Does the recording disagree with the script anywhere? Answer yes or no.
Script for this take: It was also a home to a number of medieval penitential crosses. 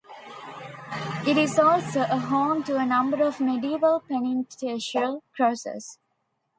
yes